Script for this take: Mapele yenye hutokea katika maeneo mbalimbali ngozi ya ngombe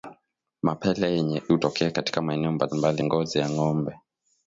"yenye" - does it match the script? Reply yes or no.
yes